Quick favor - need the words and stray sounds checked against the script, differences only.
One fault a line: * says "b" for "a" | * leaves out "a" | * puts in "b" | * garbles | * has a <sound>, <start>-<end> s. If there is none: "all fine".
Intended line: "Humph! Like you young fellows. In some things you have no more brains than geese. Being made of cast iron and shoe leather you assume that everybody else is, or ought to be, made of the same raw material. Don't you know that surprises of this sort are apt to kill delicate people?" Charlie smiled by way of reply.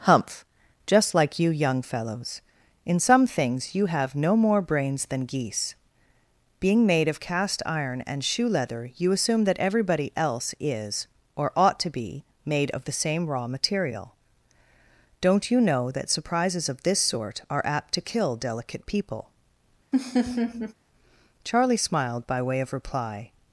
* puts in "Just"
* has a laugh, 19.9-20.7 s